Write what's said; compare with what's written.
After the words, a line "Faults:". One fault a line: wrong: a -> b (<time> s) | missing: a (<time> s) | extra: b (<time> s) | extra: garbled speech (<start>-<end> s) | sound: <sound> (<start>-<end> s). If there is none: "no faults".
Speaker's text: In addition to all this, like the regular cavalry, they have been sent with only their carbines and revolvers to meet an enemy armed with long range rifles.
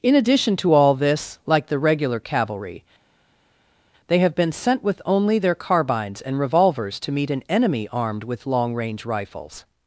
In addition to all this, like the regular cavalry, they have been sent with only their carbines and revolvers to meet an enemy armed with long range rifles.
Faults:
no faults